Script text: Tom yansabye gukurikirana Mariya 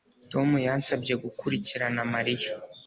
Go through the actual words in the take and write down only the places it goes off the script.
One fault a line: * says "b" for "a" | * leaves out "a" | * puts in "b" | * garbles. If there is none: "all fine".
all fine